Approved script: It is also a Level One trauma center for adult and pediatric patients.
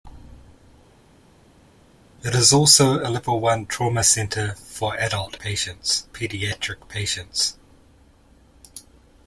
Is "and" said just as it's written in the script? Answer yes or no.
no